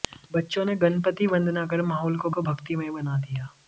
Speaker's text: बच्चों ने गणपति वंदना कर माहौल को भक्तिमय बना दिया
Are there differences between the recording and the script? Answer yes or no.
yes